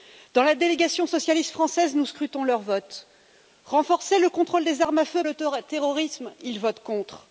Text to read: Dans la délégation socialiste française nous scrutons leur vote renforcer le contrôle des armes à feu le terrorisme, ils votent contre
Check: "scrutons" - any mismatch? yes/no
no